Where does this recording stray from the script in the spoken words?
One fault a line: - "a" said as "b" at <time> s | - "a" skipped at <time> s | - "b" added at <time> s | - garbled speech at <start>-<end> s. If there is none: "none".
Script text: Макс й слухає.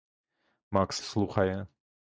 none